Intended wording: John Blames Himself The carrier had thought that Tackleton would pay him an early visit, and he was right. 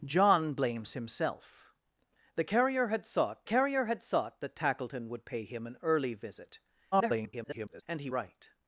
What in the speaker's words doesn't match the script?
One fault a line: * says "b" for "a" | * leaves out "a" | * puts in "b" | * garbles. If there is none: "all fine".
* puts in "carrier had thought"
* garbles
* leaves out "was"